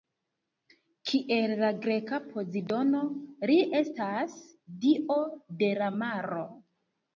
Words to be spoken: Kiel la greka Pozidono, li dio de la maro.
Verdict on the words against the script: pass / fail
fail